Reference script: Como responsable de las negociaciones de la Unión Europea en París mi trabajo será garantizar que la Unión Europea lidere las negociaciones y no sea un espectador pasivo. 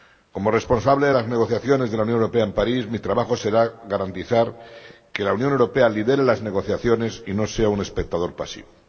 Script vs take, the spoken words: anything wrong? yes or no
no